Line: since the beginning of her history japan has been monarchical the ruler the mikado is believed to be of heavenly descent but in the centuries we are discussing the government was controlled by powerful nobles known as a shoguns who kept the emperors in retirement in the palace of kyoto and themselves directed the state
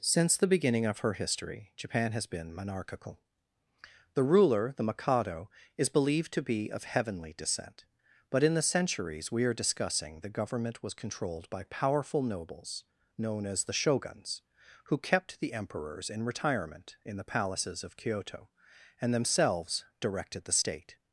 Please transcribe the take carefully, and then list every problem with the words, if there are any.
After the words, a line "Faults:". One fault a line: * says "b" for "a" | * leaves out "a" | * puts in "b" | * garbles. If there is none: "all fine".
since the beginning of her history japan has been monarchical the ruler the mikado is believed to be of heavenly descent but in the centuries we are discussing the government was controlled by powerful nobles known as the shoguns who kept the emperors in retirement in the palaces of kyoto and themselves directed the state
Faults:
* says "the" for "a"
* says "palaces" for "palace"